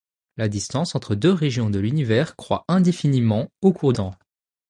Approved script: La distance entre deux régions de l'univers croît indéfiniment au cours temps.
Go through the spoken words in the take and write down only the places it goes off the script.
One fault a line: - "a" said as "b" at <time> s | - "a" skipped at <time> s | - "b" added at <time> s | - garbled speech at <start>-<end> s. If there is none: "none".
none